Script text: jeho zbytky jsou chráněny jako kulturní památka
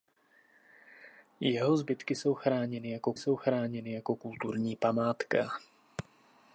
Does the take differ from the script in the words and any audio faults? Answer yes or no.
yes